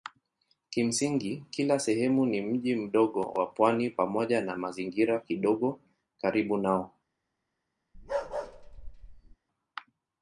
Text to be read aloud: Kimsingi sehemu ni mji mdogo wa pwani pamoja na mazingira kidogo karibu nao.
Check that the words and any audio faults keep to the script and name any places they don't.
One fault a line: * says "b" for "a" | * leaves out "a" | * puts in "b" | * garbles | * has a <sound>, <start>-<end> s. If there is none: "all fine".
* puts in "kila"
* has a bark, 7.9-9.4 s